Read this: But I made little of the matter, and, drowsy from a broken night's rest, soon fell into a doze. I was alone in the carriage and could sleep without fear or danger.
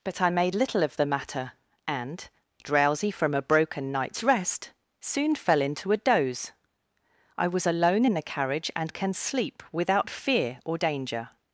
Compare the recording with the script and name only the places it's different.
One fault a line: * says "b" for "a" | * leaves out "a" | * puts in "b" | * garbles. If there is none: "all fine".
* says "can" for "could"